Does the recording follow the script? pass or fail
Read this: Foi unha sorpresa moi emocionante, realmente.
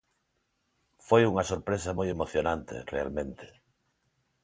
pass